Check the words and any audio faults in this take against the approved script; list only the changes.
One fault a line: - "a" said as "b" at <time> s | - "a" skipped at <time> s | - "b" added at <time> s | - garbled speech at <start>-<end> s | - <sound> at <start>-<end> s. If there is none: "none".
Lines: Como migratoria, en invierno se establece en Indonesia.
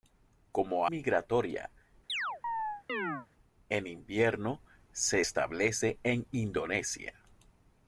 - chirp at 2.1-3.3 s